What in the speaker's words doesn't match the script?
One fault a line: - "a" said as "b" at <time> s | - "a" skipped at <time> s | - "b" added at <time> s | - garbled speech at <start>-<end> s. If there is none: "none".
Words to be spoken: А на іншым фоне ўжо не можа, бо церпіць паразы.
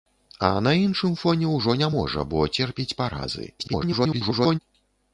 - garbled speech at 3.6-4.6 s